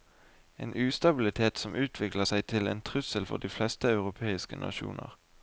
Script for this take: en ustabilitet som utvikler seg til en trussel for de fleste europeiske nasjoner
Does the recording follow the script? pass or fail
pass